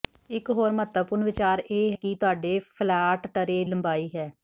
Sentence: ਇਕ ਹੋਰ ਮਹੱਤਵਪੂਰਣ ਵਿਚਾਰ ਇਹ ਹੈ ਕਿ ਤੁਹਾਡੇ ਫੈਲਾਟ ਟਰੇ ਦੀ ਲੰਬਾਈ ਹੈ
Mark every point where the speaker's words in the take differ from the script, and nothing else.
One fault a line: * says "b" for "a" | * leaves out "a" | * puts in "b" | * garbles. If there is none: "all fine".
* leaves out "ਹੈ"
* leaves out "ਦੀ"